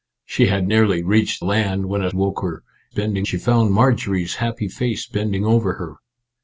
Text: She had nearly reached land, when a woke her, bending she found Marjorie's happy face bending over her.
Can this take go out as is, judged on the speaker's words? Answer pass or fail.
pass